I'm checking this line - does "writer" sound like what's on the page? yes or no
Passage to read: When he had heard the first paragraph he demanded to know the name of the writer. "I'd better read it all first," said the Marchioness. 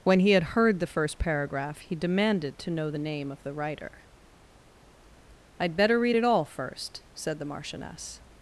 yes